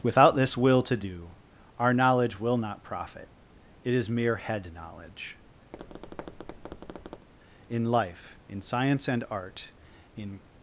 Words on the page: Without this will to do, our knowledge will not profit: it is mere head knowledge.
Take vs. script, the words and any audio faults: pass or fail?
fail